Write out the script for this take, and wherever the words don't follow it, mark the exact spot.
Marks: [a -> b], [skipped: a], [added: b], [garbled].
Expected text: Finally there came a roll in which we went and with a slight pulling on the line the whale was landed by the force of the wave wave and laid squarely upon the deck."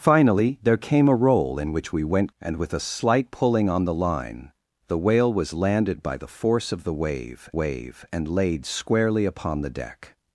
Finally there came a roll in which we went and with a slight pulling on the line the whale was landed by the force of the wave wave and laid squarely upon the deck."